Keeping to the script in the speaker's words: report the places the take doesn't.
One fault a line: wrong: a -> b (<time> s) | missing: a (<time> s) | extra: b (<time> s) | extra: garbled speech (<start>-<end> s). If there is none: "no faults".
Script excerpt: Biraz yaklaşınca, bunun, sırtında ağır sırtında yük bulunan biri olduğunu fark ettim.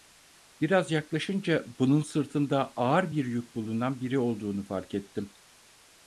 wrong: sırtında -> bir (3.1 s)